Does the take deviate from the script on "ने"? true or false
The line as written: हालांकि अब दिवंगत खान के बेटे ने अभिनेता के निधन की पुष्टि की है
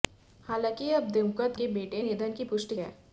true